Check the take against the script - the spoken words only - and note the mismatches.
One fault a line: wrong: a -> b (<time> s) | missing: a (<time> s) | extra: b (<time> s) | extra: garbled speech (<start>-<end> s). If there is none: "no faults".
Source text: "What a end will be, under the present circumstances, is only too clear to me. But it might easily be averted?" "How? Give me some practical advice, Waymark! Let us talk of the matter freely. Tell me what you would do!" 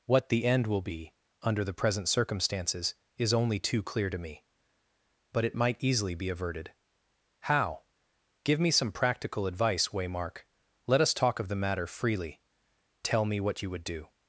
wrong: a -> the (0.3 s)